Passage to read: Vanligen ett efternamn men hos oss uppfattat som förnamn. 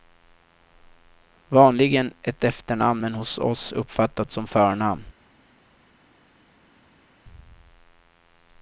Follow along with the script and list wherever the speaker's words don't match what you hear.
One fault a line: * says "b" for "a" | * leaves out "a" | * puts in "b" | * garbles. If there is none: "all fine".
all fine